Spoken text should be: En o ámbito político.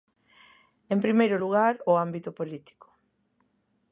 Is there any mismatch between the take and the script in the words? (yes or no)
yes